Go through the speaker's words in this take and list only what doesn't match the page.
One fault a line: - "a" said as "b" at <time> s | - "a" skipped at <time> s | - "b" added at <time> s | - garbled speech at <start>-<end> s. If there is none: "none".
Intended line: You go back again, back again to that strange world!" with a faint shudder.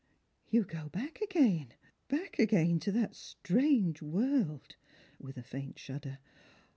none